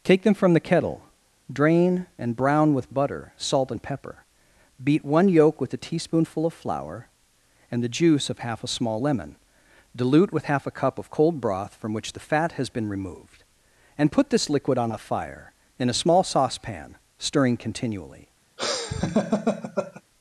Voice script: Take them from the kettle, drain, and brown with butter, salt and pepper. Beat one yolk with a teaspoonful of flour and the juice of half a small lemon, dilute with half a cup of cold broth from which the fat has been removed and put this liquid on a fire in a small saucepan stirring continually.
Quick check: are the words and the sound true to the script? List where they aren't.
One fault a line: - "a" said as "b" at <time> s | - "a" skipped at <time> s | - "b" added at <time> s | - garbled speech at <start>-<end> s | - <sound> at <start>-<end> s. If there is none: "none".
- laugh at 18.6-20.0 s